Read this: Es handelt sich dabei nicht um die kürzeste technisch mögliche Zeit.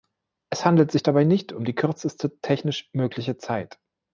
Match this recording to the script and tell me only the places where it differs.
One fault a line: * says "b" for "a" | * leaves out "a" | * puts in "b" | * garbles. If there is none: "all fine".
all fine